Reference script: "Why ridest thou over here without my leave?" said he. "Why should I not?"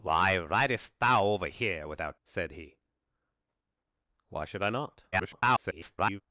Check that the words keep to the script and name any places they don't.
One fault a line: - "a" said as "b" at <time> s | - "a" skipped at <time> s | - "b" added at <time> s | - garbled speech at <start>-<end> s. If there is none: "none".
- "my leave" skipped at 2.2 s
- garbled speech at 5.1-6.2 s